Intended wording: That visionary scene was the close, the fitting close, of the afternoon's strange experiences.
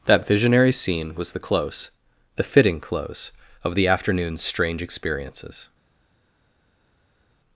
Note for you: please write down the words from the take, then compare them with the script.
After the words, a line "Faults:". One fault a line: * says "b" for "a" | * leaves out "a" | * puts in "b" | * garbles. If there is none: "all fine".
That visionary scene was the close, the fitting close, of the afternoon's strange experiences.
Faults:
all fine